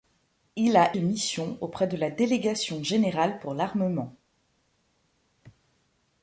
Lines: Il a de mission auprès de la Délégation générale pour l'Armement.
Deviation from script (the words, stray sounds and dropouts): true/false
false